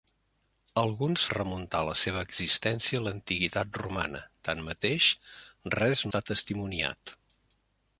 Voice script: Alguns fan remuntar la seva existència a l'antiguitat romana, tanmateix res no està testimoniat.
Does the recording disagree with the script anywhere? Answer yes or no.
yes